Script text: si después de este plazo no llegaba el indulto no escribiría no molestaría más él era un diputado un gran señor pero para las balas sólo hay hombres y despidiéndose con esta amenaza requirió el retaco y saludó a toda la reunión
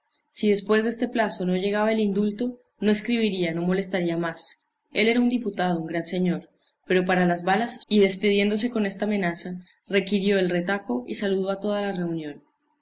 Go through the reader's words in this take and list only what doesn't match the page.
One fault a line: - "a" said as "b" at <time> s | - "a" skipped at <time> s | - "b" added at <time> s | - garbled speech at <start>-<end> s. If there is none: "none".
- "sólo hay hombres" skipped at 7.9 s